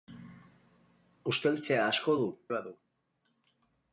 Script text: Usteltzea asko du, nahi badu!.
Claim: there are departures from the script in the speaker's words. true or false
true